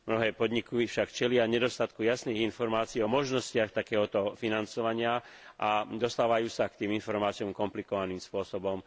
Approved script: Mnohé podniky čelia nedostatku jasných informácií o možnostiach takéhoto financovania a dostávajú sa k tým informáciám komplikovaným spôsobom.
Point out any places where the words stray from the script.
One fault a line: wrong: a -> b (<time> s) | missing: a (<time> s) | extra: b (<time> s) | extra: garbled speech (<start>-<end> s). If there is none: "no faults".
extra: však (0.9 s)